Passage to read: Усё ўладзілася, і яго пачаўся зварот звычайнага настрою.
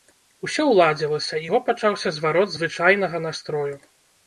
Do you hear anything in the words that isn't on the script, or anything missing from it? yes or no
no